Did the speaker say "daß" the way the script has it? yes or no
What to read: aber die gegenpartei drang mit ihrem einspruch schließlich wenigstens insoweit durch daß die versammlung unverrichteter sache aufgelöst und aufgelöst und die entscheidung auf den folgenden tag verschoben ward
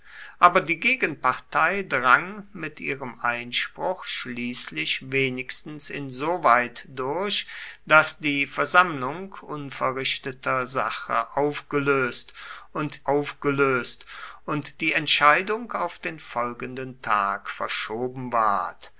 yes